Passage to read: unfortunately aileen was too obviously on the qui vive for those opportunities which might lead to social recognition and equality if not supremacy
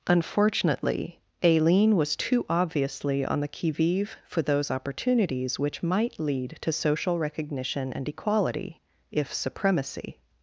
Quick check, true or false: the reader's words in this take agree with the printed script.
false